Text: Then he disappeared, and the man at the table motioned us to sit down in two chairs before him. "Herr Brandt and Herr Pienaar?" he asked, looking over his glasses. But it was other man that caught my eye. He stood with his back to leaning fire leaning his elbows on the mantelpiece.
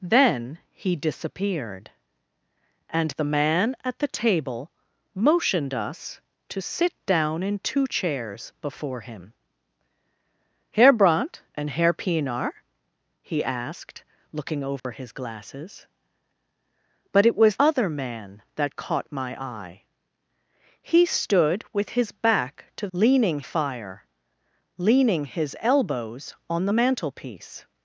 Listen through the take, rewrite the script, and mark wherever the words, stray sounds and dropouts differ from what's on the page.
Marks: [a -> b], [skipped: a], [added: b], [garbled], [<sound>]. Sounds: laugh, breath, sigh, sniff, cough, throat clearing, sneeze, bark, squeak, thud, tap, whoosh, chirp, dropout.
Then he disappeared, and the man at the table motioned us to sit down in two chairs before him. "Herr Brandt and Herr Pienaar?" he asked, looking over [dropout] his glasses. But it was other man that caught my eye. He stood with his back to leaning fire leaning his elbows on the mantelpiece.